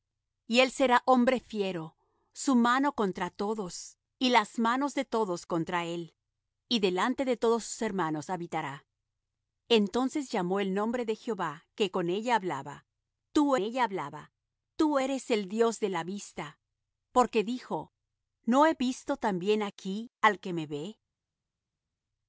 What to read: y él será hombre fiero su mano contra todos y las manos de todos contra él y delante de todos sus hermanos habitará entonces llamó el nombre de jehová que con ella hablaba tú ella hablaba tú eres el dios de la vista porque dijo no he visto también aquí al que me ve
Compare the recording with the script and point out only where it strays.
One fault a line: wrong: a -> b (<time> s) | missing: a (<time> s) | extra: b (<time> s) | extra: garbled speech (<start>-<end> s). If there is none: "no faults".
no faults